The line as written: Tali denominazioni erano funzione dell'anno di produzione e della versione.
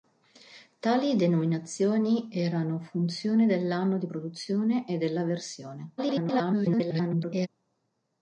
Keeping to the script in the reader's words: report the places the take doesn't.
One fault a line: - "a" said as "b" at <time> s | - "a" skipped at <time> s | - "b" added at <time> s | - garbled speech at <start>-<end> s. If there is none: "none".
- garbled speech at 6.0-7.5 s